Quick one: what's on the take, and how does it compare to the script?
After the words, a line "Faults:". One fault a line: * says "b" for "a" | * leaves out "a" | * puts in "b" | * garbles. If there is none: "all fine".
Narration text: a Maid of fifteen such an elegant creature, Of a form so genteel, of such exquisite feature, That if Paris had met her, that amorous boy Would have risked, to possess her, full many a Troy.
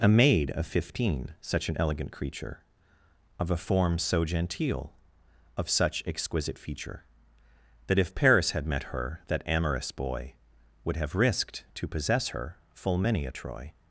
a Maid of fifteen such an elegant creature, Of a form so genteel, of such exquisite feature, That if Paris had met her, that amorous boy Would have risked, to possess her, full many a Troy.
Faults:
all fine